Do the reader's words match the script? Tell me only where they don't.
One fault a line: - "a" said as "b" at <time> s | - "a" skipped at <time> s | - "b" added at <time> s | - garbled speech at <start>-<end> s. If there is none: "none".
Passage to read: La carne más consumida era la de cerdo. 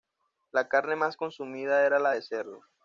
none